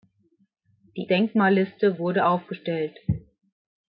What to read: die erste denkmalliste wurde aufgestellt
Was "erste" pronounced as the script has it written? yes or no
no